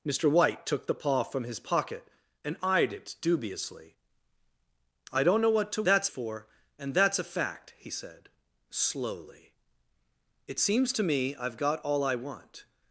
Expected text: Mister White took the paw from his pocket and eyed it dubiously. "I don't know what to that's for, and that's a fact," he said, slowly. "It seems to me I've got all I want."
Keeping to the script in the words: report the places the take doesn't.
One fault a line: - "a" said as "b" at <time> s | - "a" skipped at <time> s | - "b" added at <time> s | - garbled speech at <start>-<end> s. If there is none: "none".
none